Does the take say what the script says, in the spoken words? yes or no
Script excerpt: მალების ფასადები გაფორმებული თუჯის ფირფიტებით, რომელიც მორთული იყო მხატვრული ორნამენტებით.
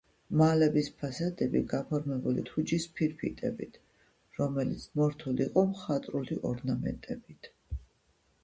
yes